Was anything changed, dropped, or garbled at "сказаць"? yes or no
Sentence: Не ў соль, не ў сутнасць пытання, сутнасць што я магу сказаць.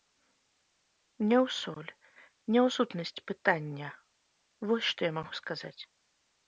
no